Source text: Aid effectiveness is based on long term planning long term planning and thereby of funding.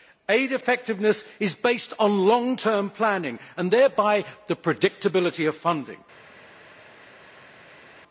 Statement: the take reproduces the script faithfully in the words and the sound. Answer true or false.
false